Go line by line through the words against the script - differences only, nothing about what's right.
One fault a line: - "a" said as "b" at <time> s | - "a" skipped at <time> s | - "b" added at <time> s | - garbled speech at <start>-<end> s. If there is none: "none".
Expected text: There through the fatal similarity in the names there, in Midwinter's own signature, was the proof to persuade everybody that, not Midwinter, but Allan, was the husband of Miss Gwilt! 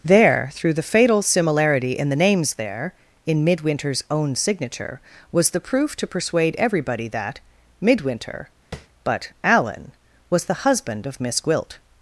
- "not" skipped at 7.4 s